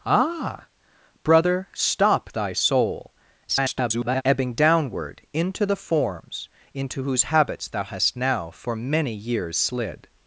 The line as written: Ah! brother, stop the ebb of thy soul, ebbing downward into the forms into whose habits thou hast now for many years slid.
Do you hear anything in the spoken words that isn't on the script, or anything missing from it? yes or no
yes